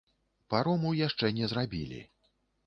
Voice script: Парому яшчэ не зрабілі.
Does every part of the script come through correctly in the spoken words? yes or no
yes